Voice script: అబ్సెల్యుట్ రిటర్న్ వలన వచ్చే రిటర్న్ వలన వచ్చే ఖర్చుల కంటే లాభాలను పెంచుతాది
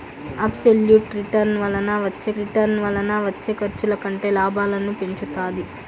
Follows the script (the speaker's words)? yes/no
yes